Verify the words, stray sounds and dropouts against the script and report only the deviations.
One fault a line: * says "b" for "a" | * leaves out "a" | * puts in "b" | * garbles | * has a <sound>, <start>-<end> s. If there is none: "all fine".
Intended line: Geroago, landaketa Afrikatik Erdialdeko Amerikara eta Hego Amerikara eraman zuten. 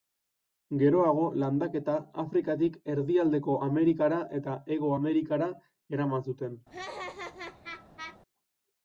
* has a laugh, 6.7-8.2 s